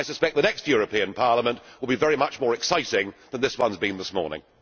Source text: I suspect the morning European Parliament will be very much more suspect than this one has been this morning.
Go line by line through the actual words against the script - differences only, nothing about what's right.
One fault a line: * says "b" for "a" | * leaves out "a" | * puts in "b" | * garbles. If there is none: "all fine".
* says "next" for "morning"
* says "exciting" for "suspect"